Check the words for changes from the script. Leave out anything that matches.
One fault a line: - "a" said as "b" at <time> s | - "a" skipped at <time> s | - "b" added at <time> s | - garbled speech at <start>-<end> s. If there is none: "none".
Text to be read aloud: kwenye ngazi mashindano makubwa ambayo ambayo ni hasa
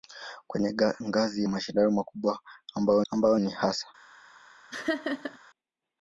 none